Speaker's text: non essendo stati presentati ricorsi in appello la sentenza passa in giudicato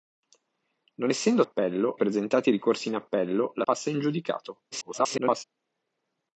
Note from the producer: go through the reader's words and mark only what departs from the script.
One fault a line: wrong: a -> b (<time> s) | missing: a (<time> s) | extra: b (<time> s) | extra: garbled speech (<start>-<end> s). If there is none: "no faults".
wrong: stati -> appello (1.4 s)
missing: sentenza (3.6 s)
extra: garbled speech (4.7-5.4 s)